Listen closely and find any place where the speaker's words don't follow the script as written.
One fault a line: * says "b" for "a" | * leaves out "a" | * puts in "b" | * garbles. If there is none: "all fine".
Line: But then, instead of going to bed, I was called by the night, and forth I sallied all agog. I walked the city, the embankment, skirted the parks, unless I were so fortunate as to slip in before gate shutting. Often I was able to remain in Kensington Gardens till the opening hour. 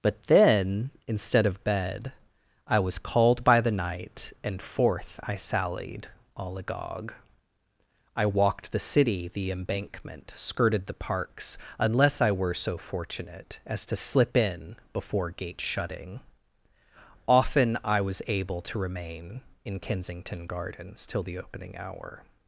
* leaves out "going to"